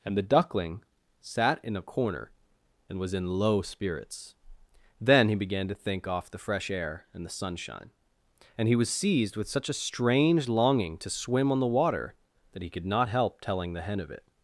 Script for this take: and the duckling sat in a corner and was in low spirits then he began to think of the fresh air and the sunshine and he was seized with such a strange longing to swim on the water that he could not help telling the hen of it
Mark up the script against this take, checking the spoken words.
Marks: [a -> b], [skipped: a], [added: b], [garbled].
and the duckling sat in a corner and was in low spirits then he began to think [of -> off] the fresh air and the sunshine and he was seized with such a strange longing to swim on the water that he could not help telling the hen of it